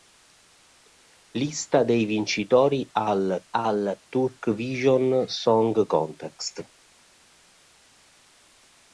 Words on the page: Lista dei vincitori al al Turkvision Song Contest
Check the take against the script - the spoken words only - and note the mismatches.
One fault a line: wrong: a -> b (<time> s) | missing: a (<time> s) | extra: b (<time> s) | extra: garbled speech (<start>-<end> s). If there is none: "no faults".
no faults